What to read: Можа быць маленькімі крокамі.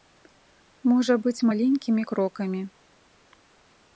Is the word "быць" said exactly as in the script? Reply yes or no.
yes